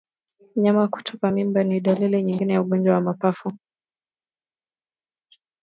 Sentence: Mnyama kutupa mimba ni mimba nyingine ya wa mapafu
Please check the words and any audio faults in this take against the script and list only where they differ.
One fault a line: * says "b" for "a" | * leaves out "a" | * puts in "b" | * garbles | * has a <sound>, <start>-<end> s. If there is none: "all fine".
* says "dalili" for "mimba"
* puts in "ugonjwa"